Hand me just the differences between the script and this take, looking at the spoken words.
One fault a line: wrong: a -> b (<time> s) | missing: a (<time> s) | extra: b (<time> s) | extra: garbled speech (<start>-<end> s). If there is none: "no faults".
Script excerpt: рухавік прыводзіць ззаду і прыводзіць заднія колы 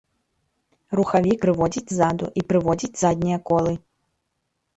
no faults